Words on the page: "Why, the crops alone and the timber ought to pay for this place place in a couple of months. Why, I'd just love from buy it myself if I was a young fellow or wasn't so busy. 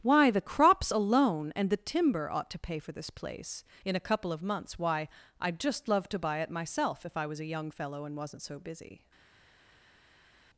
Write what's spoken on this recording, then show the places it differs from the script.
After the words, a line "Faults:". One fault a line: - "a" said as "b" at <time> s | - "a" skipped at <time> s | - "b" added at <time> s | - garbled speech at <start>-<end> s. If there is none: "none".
"Why, the crops alone and the timber ought to pay for this place in a couple of months. Why, I'd just love to buy it myself if I was a young fellow and wasn't so busy.
Faults:
- "place" skipped at 3.6 s
- "from" said as "to" at 6.1 s
- "or" said as "and" at 8.0 s